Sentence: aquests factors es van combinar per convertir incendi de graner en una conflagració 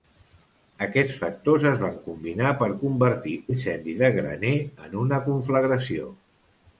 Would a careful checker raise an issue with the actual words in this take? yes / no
no